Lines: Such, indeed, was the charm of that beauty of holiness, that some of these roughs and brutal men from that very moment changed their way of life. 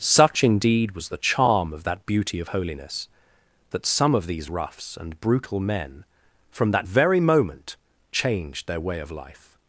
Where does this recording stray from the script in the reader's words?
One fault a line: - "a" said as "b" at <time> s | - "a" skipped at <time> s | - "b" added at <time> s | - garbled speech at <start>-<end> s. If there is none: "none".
none